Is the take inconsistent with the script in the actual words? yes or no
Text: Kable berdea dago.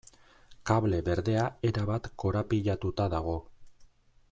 yes